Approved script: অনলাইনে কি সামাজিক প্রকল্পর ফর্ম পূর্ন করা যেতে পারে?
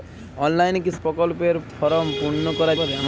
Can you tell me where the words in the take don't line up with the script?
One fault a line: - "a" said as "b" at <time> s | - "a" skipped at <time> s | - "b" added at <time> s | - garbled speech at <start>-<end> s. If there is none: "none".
- "সামাজিক" skipped at 0.9 s
- "যেতে" skipped at 2.7 s